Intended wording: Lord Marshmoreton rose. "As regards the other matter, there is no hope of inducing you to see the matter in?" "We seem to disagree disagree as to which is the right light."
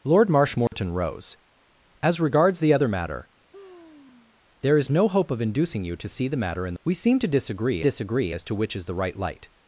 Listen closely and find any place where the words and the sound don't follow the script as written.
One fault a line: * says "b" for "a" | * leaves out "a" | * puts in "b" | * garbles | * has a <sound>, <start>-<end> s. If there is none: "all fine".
* has a dropout, 0.7-0.7 s
* has a sigh, 3.5-4.4 s